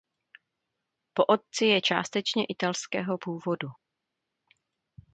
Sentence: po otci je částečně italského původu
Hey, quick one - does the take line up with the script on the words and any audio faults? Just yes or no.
yes